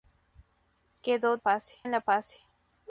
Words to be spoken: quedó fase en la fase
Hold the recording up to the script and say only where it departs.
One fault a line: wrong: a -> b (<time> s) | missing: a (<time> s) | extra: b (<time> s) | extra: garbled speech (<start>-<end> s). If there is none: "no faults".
no faults